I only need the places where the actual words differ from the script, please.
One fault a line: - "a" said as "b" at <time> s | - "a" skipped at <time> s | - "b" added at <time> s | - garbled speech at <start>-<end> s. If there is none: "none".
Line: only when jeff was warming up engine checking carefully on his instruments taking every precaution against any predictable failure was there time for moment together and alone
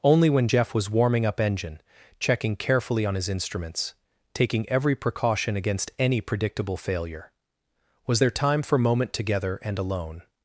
none